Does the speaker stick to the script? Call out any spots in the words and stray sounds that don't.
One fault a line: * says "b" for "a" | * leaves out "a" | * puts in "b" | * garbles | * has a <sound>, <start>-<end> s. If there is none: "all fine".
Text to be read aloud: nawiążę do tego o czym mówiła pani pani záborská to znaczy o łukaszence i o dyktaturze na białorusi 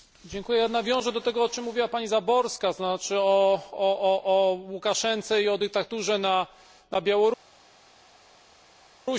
* leaves out "pani"